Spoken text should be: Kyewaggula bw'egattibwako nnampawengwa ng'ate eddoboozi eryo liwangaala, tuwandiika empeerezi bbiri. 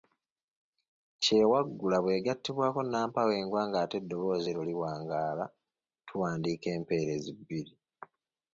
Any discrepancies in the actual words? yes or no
no